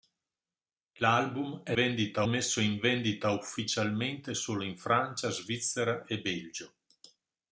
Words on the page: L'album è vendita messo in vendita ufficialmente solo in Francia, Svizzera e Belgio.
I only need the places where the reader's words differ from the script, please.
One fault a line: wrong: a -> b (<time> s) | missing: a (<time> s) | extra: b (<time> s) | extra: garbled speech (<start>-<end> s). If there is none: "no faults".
no faults